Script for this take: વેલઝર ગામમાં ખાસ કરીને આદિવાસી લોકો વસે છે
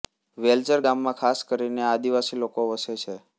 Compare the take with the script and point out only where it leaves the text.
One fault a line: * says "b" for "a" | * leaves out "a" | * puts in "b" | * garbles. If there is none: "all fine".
all fine